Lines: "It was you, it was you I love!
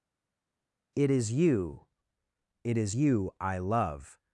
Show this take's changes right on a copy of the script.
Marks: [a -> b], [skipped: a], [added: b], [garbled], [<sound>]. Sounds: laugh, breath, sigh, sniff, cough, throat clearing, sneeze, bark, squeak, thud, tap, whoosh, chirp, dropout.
"It [was -> is] you, it [was -> is] you I love!